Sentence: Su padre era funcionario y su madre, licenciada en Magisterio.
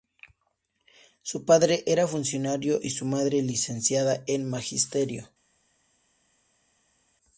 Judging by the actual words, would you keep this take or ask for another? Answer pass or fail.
pass